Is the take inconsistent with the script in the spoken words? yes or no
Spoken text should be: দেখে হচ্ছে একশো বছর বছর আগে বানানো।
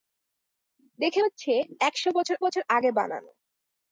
no